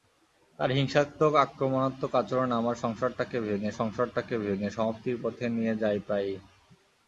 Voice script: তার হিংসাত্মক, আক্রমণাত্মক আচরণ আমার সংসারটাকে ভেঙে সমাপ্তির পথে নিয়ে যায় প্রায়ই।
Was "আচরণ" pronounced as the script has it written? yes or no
yes